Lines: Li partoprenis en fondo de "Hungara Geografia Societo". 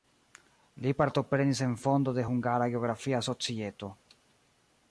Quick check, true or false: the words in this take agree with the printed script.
true